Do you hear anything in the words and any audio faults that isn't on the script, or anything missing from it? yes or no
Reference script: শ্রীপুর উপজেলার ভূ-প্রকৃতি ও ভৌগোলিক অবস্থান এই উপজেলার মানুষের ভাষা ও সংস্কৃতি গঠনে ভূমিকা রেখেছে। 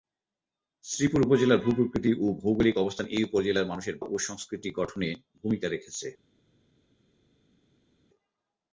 yes